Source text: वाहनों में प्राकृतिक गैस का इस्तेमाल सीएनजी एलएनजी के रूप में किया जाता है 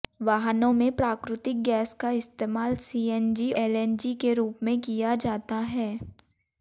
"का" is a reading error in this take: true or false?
false